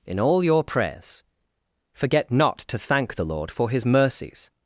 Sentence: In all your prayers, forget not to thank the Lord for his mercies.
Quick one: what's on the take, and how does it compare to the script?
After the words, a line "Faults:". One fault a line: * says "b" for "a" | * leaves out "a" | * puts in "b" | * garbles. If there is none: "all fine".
In all your prayers, forget not to thank the Lord for his mercies.
Faults:
all fine